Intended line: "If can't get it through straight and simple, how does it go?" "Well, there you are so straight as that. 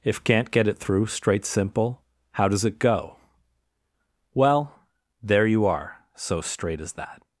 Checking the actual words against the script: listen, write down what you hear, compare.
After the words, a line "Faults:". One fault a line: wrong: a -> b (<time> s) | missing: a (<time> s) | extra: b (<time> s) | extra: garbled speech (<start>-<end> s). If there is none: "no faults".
"If can't get it through straight simple, how does it go?" "Well, there you are so straight as that.
Faults:
missing: and (1.4 s)